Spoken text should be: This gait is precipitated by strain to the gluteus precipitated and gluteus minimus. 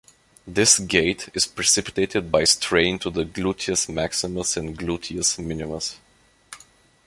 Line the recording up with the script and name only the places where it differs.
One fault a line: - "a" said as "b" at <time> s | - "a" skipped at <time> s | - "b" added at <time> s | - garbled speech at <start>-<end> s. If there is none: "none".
- "precipitated" said as "maximus" at 3.9 s